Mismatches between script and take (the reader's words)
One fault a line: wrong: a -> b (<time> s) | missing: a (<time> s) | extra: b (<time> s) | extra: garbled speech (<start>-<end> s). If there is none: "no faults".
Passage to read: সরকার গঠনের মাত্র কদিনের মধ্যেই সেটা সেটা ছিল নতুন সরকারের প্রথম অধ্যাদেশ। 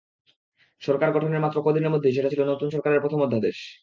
missing: সেটা (2.3 s)